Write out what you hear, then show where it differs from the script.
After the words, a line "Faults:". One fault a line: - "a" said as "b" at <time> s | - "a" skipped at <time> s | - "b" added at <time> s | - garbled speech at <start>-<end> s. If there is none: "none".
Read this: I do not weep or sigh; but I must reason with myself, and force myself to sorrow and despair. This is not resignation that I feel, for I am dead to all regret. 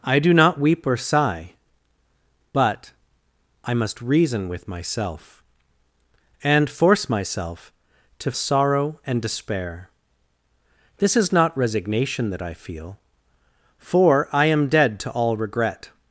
I do not weep or sigh; but I must reason with myself, and force myself to sorrow and despair. This is not resignation that I feel, for I am dead to all regret.
Faults:
none